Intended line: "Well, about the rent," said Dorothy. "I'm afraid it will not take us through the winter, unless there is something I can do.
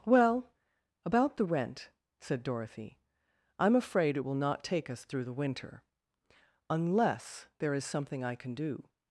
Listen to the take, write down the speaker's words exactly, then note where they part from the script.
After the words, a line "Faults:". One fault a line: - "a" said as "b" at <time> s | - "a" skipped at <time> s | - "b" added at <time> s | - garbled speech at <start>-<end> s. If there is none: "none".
"Well, about the rent," said Dorothy. "I'm afraid it will not take us through the winter, unless there is something I can do.
Faults:
none